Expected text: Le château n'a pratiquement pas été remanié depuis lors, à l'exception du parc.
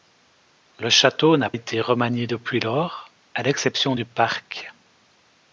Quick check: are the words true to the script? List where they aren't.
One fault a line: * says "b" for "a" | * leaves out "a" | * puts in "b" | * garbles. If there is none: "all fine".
* leaves out "pratiquement pas"